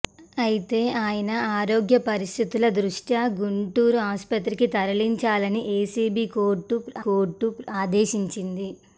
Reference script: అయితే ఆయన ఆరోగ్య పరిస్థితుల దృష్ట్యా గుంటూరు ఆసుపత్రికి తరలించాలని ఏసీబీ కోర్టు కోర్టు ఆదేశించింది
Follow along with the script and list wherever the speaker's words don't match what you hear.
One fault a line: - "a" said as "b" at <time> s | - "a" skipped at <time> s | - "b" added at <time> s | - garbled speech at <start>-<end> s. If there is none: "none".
none